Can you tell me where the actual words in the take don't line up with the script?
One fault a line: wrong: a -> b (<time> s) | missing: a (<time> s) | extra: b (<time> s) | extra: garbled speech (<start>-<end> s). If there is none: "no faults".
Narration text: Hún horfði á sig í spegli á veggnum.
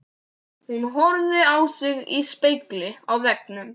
no faults